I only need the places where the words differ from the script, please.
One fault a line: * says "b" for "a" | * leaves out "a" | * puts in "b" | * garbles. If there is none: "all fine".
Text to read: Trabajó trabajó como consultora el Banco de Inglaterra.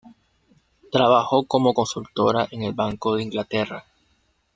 * leaves out "trabajó"
* puts in "en"